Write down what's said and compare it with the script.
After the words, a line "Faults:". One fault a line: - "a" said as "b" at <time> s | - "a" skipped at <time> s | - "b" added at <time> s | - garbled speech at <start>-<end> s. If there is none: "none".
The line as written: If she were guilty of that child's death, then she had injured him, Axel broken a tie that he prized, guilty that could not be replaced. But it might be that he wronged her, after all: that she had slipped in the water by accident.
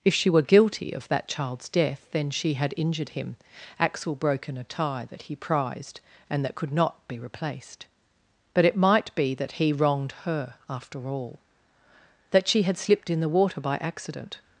If she were guilty of that child's death, then she had injured him, Axel broken a tie that he prized, and that could not be replaced. But it might be that he wronged her, after all: that she had slipped in the water by accident.
Faults:
- "guilty" said as "and" at 6.3 s